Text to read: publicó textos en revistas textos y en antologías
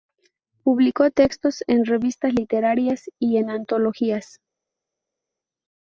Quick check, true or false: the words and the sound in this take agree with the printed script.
false